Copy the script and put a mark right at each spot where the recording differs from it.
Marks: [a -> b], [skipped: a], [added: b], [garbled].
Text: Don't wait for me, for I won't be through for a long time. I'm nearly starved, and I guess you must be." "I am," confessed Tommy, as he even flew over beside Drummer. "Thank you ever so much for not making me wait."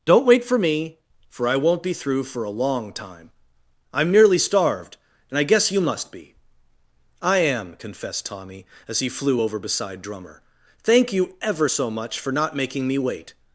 Don't wait for me, for I won't be through for a long time. I'm nearly starved, and I guess you must be." "I am," confessed Tommy, as he [skipped: even] flew over beside Drummer. "Thank you ever so much for not making me wait."